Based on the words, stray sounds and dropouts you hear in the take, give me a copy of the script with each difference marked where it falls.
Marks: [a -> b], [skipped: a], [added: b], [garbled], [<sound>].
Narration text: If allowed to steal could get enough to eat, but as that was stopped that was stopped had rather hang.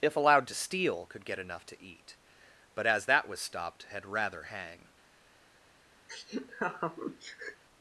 If allowed to steal could get enough to eat, but as that was stopped [skipped: that was stopped] had rather hang. [laugh]